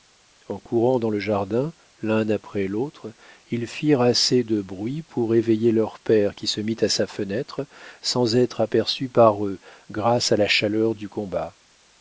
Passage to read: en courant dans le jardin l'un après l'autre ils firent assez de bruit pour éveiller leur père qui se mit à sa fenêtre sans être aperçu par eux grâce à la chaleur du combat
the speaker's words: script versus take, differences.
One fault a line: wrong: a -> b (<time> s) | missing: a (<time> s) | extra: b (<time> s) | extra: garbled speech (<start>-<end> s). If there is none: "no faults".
no faults